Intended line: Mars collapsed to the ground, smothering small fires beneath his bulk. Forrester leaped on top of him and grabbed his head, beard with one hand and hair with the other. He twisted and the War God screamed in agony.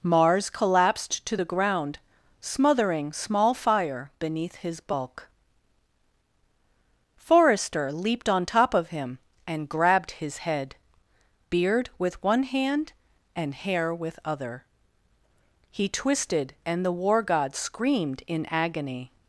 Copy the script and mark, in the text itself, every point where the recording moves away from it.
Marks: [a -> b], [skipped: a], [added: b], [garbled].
Mars collapsed to the ground, smothering small [fires -> fire] beneath his bulk. Forrester leaped on top of him and grabbed his head, beard with one hand and hair with [skipped: the] other. He twisted and the War God screamed in agony.